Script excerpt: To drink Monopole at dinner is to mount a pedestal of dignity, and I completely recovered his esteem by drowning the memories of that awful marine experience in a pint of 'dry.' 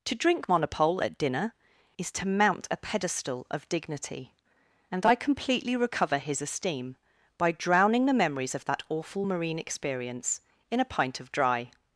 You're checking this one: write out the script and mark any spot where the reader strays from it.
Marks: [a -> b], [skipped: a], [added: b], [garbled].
To drink Monopole at dinner is to mount a pedestal of dignity, and I completely [recovered -> recover] his esteem by drowning the memories of that awful marine experience in a pint of 'dry.'